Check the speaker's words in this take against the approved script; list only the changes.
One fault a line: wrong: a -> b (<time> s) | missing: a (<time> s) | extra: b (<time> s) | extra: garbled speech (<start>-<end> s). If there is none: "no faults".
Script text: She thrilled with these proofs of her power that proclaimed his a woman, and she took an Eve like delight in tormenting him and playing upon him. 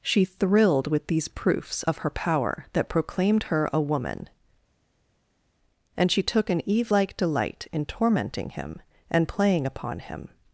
wrong: his -> her (3.4 s)